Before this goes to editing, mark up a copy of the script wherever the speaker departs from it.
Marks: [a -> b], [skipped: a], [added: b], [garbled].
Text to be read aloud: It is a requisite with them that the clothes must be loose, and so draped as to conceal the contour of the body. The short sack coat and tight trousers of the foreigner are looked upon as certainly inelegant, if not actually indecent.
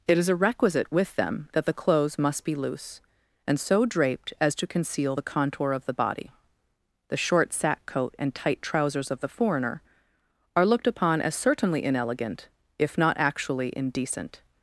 It is a requisite with them that the clothes must be loose, and so draped as to conceal the contour of the body. The short sack coat and tight trousers of the foreigner are looked upon as certainly inelegant, if not actually indecent.